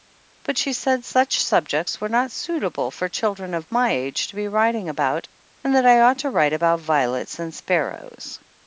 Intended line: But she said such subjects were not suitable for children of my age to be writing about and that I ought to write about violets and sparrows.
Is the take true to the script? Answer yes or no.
yes